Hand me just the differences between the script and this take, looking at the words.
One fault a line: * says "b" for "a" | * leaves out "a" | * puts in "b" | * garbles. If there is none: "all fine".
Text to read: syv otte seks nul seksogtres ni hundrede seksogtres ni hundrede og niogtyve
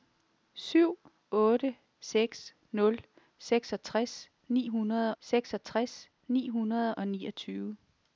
all fine